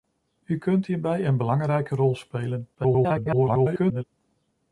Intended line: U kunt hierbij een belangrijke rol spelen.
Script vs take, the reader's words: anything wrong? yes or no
yes